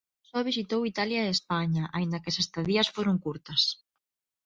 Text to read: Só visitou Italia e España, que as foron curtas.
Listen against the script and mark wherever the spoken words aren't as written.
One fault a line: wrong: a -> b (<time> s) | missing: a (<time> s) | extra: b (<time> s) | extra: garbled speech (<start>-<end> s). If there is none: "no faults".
extra: aínda (2.0 s)
extra: estadías (2.4 s)